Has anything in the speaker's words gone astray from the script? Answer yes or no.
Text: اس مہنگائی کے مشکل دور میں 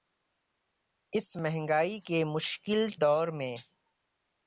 no